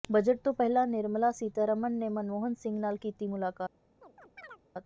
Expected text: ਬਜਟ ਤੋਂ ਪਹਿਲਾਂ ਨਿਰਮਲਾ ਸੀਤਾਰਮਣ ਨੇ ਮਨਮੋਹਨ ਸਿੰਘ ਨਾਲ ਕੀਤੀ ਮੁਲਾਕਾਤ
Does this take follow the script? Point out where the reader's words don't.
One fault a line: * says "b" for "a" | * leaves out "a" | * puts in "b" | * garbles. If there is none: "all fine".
all fine